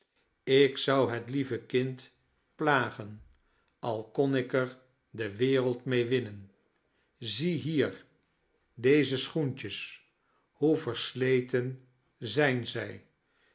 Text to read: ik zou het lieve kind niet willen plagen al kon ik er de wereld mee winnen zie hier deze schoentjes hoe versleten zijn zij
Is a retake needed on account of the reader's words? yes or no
yes